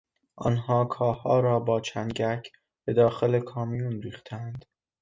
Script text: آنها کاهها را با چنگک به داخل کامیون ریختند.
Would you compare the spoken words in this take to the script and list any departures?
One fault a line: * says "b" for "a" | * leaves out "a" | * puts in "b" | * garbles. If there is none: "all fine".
all fine